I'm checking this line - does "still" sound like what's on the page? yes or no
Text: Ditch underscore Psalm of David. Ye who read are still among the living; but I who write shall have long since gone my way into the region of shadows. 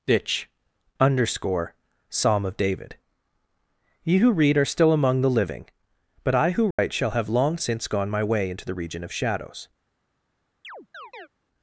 yes